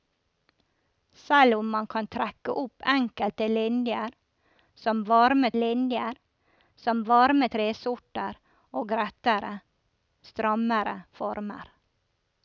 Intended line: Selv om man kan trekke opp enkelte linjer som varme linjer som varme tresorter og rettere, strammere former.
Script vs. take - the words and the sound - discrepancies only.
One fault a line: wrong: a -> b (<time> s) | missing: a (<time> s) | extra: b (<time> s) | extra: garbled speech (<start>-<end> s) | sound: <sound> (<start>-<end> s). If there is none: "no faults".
no faults